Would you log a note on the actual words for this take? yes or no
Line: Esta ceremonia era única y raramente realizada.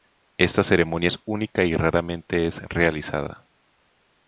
yes